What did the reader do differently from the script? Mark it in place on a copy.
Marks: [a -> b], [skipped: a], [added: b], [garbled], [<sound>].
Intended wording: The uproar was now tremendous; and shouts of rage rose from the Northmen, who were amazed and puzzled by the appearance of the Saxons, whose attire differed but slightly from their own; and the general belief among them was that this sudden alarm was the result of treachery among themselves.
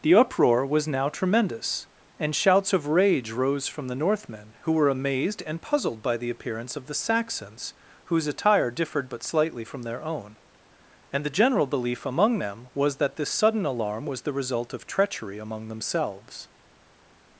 The uproar was now tremendous; and shouts of rage rose from the Northmen, who were amazed and puzzled by the appearance of the Saxons, whose attire differed but slightly from their own; and the general belief among them was that this sudden alarm was the result of treachery among themselves.